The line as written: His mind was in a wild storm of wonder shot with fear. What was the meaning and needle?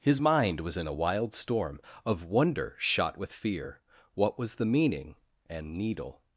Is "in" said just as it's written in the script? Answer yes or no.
yes